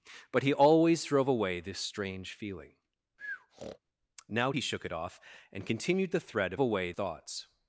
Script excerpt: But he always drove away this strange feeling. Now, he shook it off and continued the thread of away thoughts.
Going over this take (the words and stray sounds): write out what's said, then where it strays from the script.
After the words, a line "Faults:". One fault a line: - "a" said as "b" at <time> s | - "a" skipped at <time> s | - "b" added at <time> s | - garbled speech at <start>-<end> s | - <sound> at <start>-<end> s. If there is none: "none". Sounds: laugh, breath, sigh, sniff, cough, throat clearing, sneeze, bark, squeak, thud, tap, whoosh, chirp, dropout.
But he always drove away this strange feeling. Now, he shook it off and continued the thread of away thoughts.
Faults:
- breath at 3.2-3.8 s